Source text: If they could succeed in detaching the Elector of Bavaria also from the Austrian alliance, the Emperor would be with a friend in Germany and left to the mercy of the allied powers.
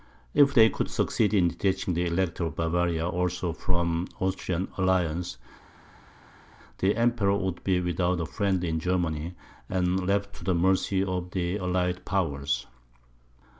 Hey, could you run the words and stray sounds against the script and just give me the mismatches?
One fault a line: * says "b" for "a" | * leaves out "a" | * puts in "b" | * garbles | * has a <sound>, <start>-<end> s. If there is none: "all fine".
* says "without" for "with"